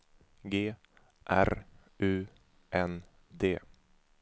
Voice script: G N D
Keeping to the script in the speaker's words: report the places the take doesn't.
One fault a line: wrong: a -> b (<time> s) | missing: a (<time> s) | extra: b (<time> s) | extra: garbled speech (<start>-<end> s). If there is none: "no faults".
extra: R U (1.3 s)